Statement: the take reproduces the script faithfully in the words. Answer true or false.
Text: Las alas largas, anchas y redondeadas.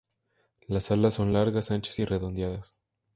false